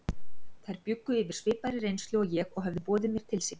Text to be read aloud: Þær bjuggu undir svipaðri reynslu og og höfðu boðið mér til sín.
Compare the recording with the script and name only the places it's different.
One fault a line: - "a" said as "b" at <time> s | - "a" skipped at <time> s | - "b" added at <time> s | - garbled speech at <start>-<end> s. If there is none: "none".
- "undir" said as "yfir" at 1.2 s
- "ég" added at 2.4 s